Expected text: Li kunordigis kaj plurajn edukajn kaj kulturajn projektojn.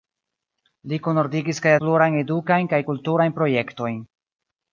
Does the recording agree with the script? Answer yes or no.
yes